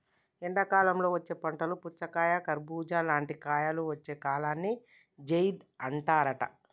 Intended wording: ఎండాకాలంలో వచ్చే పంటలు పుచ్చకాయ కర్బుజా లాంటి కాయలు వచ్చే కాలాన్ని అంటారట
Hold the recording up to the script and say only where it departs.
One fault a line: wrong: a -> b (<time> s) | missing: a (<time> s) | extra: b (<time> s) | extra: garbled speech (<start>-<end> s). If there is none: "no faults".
extra: జైద్ (5.2 s)